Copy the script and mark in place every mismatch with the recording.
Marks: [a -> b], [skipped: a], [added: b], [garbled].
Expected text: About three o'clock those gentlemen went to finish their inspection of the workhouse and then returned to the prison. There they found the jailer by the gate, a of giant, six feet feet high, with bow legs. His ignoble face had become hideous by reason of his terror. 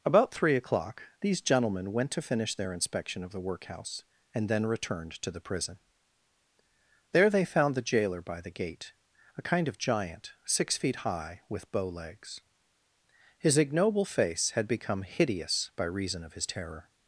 About three o'clock [those -> these] gentlemen went to finish their inspection of the workhouse and then returned to the prison. There they found the jailer by the gate, a [added: kind] of giant, six feet [skipped: feet] high, with bow legs. His ignoble face had become hideous by reason of his terror.